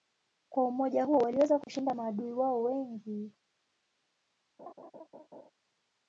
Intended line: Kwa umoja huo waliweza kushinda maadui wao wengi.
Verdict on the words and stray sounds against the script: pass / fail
fail